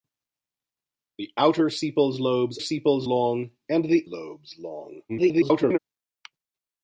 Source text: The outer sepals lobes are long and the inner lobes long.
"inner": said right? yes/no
no